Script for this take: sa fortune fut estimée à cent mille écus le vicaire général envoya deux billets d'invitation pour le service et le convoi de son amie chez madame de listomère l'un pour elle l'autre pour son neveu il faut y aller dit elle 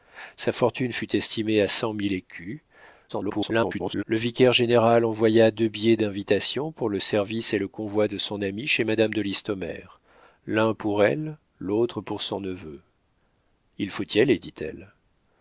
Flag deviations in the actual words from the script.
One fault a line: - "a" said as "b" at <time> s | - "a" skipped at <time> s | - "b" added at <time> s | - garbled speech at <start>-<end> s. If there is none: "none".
- garbled speech at 3.1-4.0 s